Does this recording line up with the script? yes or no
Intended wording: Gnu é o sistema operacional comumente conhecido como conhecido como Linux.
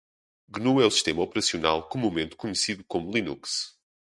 no